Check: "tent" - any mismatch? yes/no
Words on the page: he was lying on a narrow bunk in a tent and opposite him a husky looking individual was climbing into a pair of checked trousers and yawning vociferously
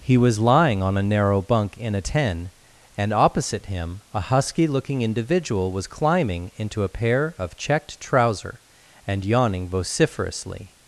yes